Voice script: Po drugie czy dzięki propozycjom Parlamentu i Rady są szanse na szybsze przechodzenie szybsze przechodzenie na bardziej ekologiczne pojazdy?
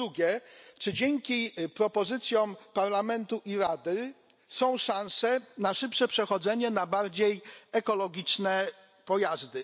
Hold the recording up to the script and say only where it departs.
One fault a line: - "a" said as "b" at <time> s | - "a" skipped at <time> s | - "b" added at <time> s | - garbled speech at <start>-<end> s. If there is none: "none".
- "szybsze przechodzenie" skipped at 6.7 s